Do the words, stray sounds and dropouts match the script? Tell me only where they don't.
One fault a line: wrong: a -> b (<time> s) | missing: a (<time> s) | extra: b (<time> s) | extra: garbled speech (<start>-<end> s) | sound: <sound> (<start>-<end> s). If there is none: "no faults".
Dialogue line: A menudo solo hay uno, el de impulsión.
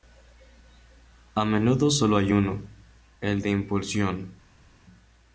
no faults